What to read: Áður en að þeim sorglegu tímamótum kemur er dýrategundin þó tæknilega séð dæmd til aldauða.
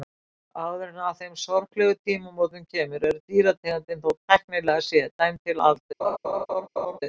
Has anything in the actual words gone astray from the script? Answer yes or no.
no